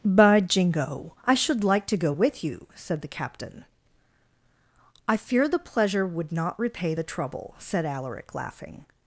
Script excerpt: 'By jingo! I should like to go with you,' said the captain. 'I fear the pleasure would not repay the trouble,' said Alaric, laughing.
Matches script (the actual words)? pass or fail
pass